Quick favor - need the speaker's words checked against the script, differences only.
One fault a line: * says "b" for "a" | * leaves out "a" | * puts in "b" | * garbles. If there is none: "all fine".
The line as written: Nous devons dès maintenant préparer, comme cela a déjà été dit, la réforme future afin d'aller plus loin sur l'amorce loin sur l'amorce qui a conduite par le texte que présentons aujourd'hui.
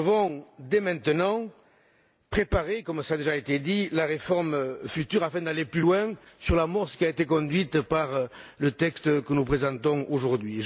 * leaves out "loin sur l'amorce"
* puts in "été"
* puts in "nous"